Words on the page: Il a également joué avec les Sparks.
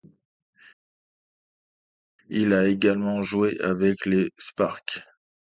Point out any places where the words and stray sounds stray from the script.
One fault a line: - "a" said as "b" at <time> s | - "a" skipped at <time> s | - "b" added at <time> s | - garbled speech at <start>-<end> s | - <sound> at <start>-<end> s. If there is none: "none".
none